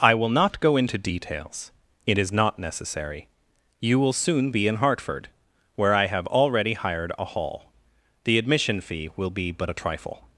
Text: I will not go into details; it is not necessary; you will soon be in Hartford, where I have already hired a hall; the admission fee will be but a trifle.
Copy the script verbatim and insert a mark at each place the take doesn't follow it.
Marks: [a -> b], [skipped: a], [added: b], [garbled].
I will not go into details; it is not necessary; you will soon be in Hartford, where I have already hired a hall; the admission fee will be but a trifle.